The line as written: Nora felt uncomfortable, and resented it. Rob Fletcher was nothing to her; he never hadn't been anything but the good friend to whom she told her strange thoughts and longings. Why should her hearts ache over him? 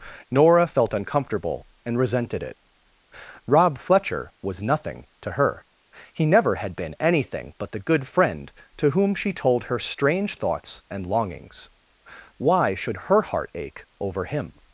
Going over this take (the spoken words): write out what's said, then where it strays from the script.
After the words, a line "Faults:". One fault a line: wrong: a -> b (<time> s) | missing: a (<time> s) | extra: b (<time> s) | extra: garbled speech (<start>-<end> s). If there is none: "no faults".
Nora felt uncomfortable, and resented it. Rob Fletcher was nothing to her; he never had been anything but the good friend to whom she told her strange thoughts and longings. Why should her heart ache over him?
Faults:
wrong: hadn't -> had (6.5 s)
wrong: hearts -> heart (13.2 s)